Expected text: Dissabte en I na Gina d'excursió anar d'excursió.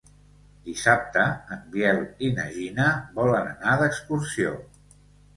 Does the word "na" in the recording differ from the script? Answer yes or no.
no